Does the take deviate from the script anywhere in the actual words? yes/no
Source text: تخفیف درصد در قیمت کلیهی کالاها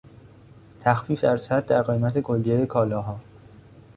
no